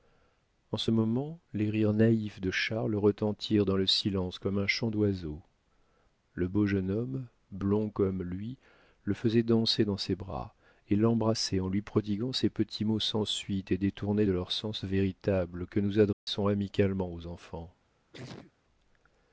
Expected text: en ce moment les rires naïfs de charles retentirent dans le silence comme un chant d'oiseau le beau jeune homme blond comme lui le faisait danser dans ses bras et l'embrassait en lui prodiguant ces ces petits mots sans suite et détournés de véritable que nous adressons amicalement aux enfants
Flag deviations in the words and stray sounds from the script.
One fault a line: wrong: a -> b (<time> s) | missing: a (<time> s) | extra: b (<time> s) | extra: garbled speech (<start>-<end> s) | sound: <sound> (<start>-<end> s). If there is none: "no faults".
missing: ces (12.5 s)
extra: leur sens (14.3 s)
sound: dropout (16.1-16.3 s)
sound: sneeze (18.1-18.5 s)